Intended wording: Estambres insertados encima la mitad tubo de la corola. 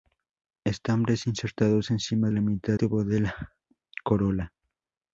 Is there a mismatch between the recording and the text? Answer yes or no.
no